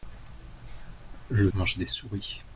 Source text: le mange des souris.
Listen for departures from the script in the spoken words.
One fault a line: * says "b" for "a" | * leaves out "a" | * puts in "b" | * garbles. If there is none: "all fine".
all fine